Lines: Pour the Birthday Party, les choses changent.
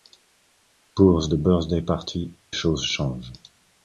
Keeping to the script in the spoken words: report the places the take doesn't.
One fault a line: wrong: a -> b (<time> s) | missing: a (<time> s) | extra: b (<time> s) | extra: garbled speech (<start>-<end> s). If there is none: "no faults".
missing: les (2.3 s)